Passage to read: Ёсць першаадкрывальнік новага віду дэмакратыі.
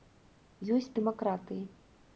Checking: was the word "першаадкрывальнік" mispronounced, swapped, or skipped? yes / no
yes